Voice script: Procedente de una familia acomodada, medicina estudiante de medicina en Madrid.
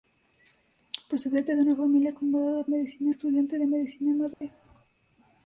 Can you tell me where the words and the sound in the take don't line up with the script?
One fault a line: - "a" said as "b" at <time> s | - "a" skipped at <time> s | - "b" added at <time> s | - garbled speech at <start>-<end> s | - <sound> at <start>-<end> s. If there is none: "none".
- dropout at 4.3-4.4 s